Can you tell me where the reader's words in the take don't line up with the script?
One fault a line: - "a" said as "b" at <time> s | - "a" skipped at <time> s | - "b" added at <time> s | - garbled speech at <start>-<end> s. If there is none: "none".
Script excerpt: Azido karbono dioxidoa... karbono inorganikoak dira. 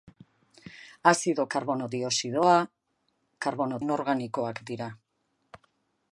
none